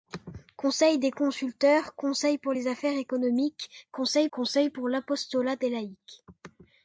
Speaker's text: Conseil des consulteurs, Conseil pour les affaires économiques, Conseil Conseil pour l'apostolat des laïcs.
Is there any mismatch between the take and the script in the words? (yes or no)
no